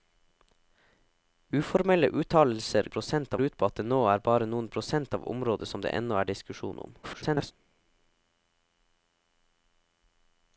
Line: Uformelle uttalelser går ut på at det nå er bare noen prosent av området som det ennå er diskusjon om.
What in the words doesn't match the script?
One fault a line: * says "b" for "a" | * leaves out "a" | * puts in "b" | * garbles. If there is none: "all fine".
* says "prosent" for "går"
* garbles